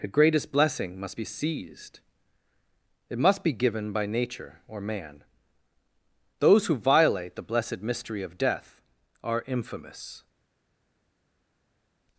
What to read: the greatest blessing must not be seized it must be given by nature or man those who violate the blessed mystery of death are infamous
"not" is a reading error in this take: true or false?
true